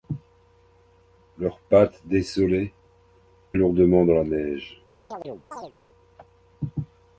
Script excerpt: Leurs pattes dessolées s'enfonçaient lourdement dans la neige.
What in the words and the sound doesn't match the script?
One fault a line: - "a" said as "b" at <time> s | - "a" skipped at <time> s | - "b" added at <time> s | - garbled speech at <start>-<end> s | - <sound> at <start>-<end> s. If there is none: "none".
- "s'enfonçaient" skipped at 2.7 s
- chirp at 5.1-5.7 s